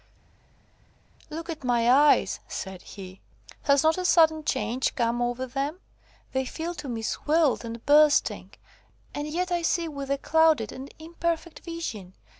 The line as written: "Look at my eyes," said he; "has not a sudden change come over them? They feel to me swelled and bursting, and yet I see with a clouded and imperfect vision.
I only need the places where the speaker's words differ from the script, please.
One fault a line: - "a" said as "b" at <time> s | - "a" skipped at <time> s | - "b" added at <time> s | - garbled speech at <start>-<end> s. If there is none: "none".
none